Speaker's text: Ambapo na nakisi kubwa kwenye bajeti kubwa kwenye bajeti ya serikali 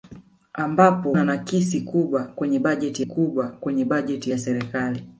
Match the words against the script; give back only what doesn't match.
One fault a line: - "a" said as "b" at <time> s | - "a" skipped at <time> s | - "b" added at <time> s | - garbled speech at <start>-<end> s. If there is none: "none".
none